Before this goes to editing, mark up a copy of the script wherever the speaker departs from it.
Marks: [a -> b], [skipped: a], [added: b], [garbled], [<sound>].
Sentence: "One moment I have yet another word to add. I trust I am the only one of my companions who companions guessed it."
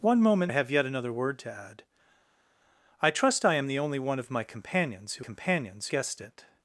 "One moment I have yet another word to add. I trust I am the only one of my companions who companions guessed it."